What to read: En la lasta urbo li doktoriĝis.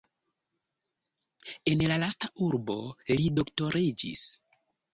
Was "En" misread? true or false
false